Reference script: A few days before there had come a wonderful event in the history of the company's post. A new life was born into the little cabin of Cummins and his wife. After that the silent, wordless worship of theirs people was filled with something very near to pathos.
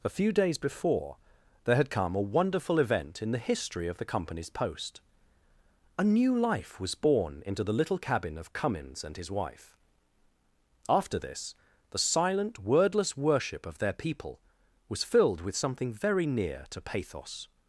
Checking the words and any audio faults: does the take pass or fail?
fail